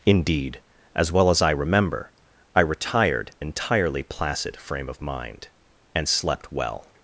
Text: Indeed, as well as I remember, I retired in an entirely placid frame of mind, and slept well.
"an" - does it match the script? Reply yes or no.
no